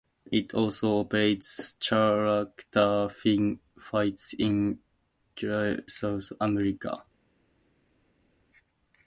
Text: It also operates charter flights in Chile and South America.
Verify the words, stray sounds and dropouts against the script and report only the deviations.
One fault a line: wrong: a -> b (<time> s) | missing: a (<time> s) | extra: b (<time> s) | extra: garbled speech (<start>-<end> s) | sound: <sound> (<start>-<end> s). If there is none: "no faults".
missing: and (5.8 s)